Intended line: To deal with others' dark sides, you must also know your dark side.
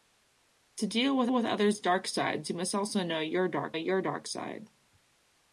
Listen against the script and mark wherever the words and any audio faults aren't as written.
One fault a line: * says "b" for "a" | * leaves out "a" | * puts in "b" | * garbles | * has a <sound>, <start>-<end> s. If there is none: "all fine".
* puts in "with"
* puts in "your dark"